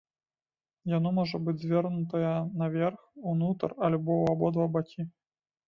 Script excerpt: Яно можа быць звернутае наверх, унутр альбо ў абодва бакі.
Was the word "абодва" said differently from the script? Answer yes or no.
no